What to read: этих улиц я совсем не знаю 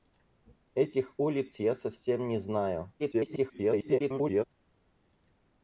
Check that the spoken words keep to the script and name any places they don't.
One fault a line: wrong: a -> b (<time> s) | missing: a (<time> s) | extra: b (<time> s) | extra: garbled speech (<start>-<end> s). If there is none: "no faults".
extra: garbled speech (3.0-4.4 s)